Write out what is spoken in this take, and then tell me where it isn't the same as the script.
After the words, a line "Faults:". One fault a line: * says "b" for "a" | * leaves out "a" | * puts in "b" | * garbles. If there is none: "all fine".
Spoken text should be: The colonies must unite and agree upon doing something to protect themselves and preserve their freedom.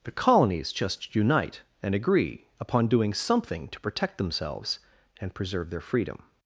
The colonies just unite and agree upon doing something to protect themselves and preserve their freedom.
Faults:
* says "just" for "must"